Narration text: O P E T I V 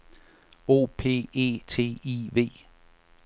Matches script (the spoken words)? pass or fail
pass